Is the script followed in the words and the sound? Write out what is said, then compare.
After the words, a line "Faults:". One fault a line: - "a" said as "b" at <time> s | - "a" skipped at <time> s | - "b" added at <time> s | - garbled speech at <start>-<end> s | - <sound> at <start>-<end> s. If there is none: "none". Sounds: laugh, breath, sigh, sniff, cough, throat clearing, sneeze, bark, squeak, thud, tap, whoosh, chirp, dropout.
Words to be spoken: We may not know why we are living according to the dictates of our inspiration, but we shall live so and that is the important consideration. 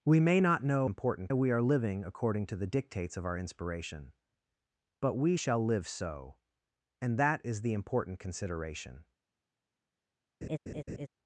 We may not know important we are living according to the dictates of our inspiration, but we shall live so and that is the important consideration.
Faults:
- "why" said as "important" at 0.9 s
- laugh at 10.4-11.1 s